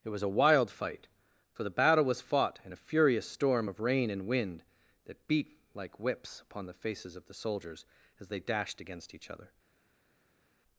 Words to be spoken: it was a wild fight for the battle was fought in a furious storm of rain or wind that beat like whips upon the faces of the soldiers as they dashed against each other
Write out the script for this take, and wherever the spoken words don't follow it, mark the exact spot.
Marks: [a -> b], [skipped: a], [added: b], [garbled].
it was a wild fight for the battle was fought in a furious storm of rain [or -> and] wind that beat like whips upon the faces of the soldiers as they dashed against each other